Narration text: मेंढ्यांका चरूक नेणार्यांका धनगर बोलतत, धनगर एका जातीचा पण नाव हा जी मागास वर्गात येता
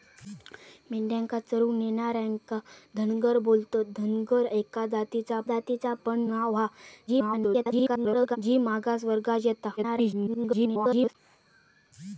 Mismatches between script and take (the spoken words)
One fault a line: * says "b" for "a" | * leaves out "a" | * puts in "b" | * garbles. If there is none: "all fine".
* puts in "जातीचा"
* garbles
* garbles